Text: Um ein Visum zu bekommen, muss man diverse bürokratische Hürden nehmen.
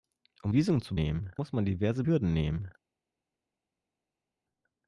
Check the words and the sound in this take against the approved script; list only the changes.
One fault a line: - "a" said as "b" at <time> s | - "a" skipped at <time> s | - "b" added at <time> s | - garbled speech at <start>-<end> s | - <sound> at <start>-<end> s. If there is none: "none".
- "ein" skipped at 0.5 s
- "bekommen" said as "nehmen" at 0.9 s
- "bürokratische" skipped at 2.0 s